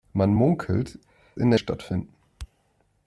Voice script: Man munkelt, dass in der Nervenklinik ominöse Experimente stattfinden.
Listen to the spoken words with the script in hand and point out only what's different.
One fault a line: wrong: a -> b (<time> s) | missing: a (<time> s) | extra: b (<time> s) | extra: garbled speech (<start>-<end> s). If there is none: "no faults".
missing: dass (1.0 s)
missing: Nervenklinik ominöse Experimente (1.6 s)